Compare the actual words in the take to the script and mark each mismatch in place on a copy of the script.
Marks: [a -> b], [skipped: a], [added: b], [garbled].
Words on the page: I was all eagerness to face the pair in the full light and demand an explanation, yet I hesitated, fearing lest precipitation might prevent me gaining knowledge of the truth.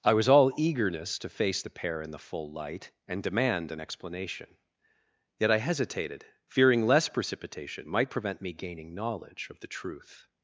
I was all eagerness to face the pair in the full light and demand an explanation, yet I hesitated, fearing [lest -> less] precipitation might prevent me gaining knowledge of the truth.